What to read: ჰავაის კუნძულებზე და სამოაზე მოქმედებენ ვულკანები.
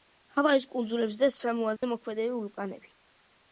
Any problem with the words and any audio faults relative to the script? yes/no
yes